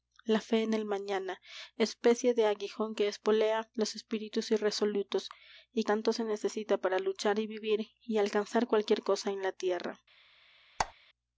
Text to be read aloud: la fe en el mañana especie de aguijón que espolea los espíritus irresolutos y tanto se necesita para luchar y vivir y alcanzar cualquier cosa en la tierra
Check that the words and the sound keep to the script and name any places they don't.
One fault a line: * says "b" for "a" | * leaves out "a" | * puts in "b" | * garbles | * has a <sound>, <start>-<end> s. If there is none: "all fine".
* has a squeak, 10.8-10.9 s